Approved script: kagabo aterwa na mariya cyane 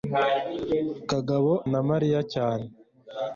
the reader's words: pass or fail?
fail